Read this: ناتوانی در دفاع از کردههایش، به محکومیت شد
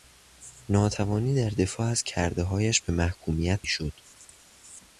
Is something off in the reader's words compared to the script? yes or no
no